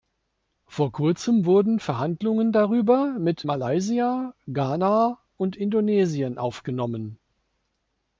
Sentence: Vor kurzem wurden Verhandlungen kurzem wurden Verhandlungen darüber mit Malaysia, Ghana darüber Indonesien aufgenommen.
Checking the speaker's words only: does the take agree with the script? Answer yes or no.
no